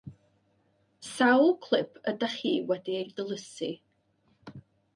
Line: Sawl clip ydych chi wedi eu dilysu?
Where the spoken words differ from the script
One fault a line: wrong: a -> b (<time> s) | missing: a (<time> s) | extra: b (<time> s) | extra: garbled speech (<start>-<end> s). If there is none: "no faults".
no faults